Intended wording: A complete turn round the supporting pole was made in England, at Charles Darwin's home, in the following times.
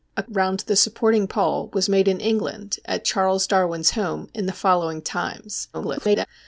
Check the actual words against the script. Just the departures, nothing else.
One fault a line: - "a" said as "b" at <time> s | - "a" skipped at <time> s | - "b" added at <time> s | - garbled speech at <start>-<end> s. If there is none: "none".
- "complete turn" skipped at 0.2 s
- garbled speech at 5.7-6.3 s